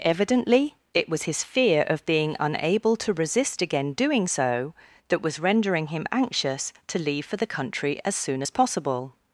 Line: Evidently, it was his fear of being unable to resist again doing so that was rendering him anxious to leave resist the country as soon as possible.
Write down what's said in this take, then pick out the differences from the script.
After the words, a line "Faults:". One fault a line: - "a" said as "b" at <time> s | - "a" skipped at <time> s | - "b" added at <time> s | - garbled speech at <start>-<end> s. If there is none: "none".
Evidently, it was his fear of being unable to resist again doing so that was rendering him anxious to leave for the country as soon as possible.
Faults:
- "resist" said as "for" at 7.2 s